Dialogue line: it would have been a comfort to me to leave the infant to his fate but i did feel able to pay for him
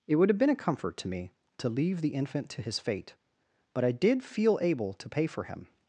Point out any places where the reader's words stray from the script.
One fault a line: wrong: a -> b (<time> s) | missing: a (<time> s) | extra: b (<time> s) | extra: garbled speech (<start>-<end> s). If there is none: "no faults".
no faults